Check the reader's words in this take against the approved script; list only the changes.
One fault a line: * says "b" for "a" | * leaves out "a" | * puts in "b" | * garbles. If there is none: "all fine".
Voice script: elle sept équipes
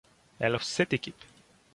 all fine